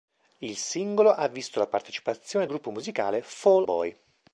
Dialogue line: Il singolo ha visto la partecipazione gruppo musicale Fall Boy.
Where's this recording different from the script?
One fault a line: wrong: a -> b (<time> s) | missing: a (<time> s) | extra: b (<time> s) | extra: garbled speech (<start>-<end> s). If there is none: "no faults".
no faults